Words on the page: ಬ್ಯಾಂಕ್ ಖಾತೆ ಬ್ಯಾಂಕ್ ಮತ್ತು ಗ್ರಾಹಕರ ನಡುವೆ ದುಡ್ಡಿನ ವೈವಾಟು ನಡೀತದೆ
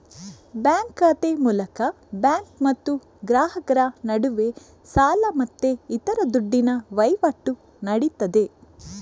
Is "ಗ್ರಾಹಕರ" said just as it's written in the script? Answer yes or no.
yes